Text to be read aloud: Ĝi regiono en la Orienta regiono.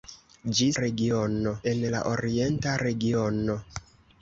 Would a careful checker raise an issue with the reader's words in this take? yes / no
no